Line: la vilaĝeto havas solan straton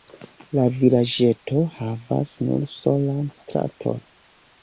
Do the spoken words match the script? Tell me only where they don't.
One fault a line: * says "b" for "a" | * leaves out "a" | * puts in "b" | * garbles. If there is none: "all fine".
* puts in "nur"